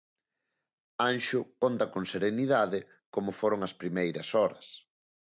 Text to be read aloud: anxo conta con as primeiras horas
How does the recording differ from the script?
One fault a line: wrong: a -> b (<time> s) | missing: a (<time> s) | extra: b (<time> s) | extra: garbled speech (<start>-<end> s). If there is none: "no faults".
extra: serenidade como foron (2.1 s)